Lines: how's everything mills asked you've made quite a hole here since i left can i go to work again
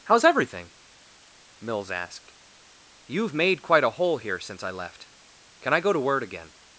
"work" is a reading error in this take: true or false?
true